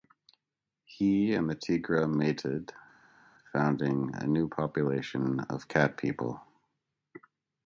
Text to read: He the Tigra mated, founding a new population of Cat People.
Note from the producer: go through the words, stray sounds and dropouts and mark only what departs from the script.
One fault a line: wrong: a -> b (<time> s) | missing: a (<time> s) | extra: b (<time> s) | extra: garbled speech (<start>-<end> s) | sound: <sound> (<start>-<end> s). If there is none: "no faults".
extra: and (1.4 s)